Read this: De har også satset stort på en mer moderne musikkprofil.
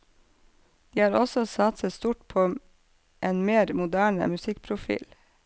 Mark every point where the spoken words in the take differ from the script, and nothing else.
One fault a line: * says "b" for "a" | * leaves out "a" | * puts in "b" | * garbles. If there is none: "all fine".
all fine